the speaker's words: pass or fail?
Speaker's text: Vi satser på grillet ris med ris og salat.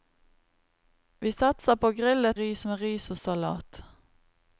pass